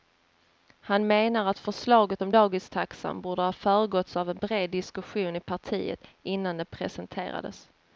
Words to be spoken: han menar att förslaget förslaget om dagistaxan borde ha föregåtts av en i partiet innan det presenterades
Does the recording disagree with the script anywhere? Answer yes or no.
yes